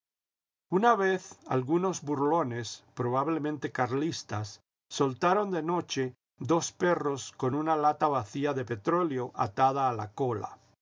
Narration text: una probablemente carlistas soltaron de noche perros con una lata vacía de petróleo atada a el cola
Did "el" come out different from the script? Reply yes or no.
yes